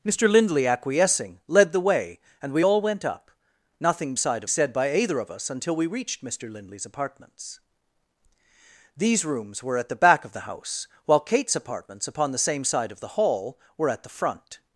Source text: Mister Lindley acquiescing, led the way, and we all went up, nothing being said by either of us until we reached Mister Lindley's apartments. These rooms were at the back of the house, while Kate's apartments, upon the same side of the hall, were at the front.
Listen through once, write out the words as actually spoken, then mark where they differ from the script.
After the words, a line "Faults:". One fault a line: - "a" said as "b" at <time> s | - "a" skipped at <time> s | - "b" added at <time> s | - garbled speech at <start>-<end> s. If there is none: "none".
Mister Lindley acquiescing, led the way, and we all went up, nothing side said by either of us until we reached Mister Lindley's apartments. These rooms were at the back of the house, while Kate's apartments, upon the same side of the hall, were at the front.
Faults:
- "being" said as "side" at 4.2 s